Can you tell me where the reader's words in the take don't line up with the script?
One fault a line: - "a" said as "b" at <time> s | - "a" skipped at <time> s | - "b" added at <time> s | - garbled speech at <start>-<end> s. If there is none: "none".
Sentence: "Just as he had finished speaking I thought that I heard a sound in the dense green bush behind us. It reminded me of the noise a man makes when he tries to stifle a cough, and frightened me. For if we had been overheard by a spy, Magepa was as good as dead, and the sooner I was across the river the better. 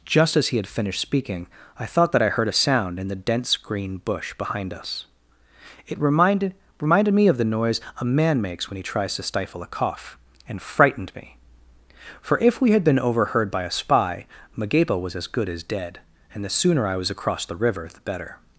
- "reminded" added at 6.8 s